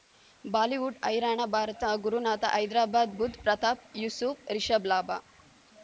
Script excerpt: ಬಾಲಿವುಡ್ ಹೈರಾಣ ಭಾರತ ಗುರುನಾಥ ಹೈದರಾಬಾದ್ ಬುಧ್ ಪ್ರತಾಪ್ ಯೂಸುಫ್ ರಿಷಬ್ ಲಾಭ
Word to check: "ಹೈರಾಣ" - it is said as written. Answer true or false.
true